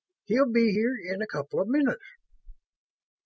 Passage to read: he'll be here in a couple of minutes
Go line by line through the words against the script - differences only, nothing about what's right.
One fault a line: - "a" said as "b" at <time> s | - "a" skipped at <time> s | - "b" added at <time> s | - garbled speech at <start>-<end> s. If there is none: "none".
none